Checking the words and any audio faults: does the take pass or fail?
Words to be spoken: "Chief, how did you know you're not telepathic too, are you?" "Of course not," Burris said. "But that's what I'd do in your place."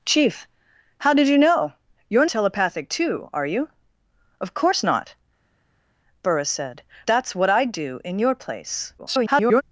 fail